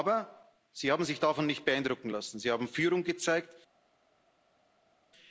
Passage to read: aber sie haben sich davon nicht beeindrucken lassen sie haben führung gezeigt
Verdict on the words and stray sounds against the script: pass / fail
pass